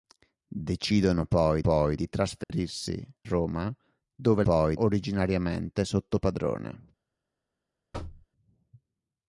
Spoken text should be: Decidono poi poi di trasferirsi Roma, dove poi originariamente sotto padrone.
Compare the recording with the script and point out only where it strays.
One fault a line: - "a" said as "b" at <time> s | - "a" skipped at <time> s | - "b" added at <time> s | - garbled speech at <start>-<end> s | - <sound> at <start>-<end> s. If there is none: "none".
- dropout at 2.4-2.5 s
- thud at 7.9-8.3 s